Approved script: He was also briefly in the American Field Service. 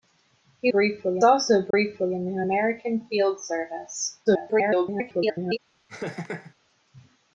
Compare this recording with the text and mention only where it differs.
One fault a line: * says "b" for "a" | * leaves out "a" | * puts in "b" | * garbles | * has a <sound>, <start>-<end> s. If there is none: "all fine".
* says "briefly" for "was"
* has a dropout, 1.7-1.7 s
* garbles
* has a laugh, 5.9-6.5 s